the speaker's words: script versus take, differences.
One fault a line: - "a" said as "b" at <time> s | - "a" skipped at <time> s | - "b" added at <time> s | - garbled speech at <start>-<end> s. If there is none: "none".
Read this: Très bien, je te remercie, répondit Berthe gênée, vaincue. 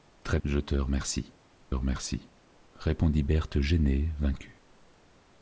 - "bien" skipped at 0.4 s
- "remercie" added at 1.7 s